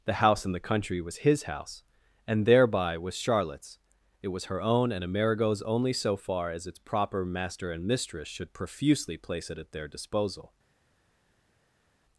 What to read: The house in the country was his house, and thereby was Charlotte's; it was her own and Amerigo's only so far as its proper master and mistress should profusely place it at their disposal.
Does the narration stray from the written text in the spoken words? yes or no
no